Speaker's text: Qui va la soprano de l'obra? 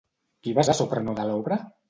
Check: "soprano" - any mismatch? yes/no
no